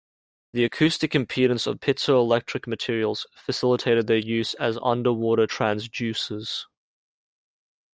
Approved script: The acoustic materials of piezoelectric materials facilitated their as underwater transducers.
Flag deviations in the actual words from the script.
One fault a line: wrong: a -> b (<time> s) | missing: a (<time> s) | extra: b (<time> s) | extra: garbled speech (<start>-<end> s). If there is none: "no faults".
wrong: materials -> impedance (1.1 s)
extra: use (4.2 s)